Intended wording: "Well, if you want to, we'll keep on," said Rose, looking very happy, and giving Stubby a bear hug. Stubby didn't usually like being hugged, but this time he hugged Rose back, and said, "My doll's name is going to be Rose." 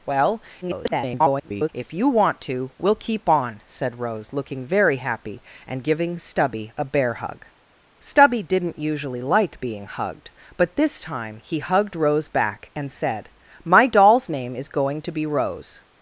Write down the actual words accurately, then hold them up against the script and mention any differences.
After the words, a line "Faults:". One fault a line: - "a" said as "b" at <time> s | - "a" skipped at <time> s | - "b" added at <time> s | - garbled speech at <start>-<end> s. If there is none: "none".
"Well, [garbled] if you want to, we'll keep on," said Rose, looking very happy, and giving Stubby a bear hug. Stubby didn't usually like being hugged, but this time he hugged Rose back, and said, "My doll's name is going to be Rose."
Faults:
- garbled speech at 0.6-1.7 s